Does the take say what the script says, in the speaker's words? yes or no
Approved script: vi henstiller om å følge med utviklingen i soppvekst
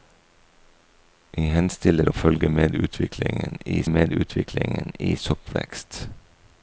no